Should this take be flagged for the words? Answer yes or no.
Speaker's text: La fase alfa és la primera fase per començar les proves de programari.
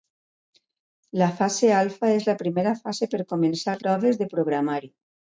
yes